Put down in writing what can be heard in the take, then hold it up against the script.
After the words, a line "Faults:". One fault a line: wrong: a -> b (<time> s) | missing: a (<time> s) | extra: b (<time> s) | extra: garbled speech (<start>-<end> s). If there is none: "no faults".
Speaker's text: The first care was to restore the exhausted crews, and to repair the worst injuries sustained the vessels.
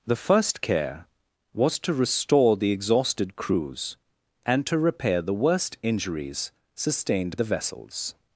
The first care was to restore the exhausted crews, and to repair the worst injuries sustained the vessels.
Faults:
no faults